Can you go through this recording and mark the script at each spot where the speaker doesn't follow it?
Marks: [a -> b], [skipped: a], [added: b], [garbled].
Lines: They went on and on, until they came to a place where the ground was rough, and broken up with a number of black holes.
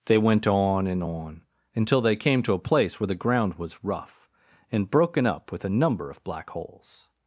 They went on and on, until they came to a place where the ground was rough, and broken up with a number of black holes.